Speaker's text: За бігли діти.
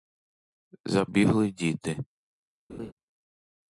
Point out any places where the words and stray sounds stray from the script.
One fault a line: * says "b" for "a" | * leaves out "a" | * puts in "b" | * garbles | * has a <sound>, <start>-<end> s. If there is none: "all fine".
* has a laugh, 2.7-2.9 s